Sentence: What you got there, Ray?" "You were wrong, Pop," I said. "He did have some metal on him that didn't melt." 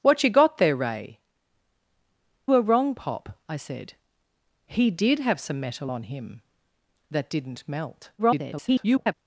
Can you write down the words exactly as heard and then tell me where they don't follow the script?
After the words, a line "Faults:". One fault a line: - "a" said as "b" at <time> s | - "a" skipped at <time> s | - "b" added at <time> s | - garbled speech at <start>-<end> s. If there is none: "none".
What you got there, Ray?" "Were wrong, Pop," I said. "He did have some metal on him that didn't melt." [garbled]
Faults:
- "You" skipped at 1.2 s
- garbled speech at 8.2-9.1 s